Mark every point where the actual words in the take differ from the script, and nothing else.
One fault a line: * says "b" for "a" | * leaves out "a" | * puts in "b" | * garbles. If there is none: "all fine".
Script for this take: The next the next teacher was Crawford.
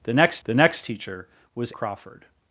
all fine